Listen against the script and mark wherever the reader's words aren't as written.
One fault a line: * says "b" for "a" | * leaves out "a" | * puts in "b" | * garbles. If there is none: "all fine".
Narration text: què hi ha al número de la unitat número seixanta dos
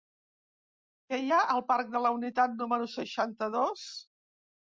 * says "parc" for "número"